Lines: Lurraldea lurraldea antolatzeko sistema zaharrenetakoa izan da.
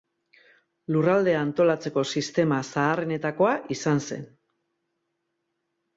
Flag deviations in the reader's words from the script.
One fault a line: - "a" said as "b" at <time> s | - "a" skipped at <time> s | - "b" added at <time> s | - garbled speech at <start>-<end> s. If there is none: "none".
- "lurraldea" skipped at 1.4 s
- "da" said as "zen" at 4.1 s